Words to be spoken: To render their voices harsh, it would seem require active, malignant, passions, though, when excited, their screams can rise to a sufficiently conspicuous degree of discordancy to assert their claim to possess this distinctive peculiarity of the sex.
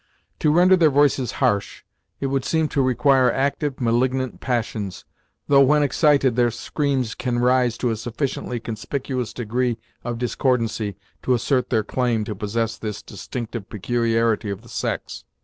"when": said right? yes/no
yes